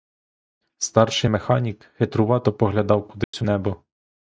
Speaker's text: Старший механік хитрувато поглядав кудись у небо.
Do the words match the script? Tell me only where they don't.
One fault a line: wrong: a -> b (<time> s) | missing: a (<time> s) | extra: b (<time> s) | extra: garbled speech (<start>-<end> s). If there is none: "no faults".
no faults